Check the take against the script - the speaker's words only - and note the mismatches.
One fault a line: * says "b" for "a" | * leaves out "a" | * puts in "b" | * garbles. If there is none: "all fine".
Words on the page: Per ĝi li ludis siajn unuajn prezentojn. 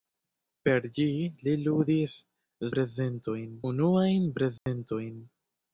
* says "prezentojn" for "siajn"